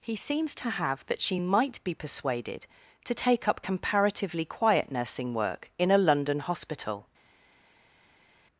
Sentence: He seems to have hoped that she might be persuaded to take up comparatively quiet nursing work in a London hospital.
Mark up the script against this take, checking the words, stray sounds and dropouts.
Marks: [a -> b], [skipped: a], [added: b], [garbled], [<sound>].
He seems to have [skipped: hoped] that she might be persuaded to take up comparatively quiet nursing work in a London hospital.